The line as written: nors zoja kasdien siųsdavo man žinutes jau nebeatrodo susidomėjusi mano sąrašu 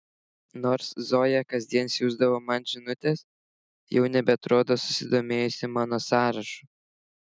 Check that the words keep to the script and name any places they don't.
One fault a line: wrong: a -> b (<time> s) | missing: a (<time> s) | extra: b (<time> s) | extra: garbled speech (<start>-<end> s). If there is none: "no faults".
no faults